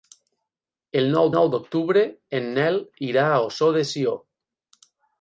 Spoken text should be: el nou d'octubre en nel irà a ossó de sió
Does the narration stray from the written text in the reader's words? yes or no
yes